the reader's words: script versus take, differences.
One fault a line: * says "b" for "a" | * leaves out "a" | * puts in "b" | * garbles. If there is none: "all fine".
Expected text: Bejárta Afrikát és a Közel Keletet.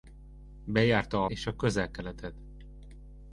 * leaves out "Afrikát"